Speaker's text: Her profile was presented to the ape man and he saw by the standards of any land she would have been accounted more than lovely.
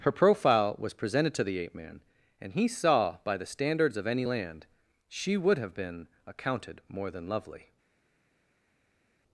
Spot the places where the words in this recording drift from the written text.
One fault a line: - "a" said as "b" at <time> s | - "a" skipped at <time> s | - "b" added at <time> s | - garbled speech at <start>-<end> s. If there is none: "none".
none